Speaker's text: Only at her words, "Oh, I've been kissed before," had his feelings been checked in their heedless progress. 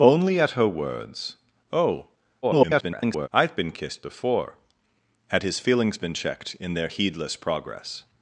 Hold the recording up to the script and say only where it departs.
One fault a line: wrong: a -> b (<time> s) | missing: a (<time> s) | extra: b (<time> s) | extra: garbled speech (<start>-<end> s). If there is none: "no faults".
extra: garbled speech (2.4-3.3 s)